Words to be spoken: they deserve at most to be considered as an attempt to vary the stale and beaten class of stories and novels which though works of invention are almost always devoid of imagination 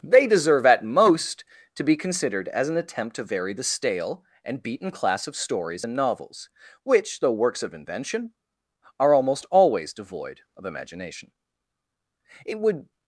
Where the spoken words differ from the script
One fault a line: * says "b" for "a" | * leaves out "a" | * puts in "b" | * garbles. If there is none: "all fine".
* puts in "it would"